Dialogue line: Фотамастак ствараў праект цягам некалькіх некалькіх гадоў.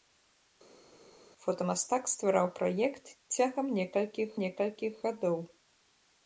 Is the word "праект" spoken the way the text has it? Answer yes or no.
yes